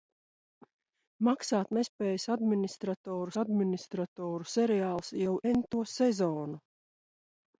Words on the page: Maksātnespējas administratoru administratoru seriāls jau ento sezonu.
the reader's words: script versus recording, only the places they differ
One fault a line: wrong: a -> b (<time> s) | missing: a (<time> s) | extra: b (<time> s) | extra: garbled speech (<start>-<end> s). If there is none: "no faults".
no faults